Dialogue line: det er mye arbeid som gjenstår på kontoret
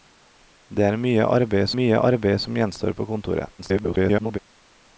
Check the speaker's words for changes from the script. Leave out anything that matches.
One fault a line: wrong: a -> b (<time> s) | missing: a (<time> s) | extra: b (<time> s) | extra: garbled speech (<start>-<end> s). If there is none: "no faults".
extra: mye arbeid (1.8 s)
extra: garbled speech (3.6-4.4 s)